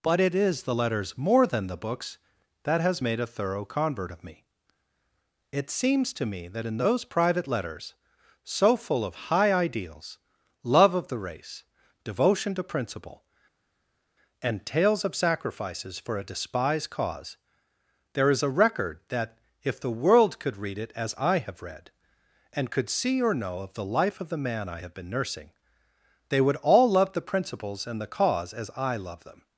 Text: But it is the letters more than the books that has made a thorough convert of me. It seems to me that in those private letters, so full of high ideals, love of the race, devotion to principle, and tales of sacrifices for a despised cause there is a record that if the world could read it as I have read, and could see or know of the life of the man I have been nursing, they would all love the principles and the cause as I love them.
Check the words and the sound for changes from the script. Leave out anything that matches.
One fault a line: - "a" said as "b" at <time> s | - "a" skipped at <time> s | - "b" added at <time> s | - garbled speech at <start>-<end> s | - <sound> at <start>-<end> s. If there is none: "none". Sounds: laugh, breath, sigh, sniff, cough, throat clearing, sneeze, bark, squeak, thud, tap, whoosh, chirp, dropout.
none